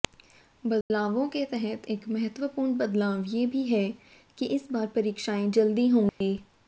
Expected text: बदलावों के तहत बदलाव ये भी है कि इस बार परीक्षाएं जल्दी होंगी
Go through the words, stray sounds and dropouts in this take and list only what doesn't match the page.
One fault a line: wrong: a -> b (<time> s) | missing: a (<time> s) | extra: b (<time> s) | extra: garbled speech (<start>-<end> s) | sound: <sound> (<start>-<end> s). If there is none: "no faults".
sound: dropout (0.8-0.9 s)
extra: एक महत्वपूर्ण (1.9 s)
sound: dropout (6.1-6.2 s)